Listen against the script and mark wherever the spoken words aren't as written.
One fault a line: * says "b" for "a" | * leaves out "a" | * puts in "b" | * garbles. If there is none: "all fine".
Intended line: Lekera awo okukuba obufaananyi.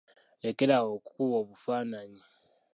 all fine